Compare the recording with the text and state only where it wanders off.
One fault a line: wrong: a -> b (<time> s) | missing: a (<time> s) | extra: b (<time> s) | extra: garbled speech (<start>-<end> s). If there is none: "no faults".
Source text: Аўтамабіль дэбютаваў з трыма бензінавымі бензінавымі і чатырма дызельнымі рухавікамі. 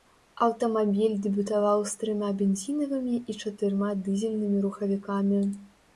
missing: бензінавымі (3.1 s)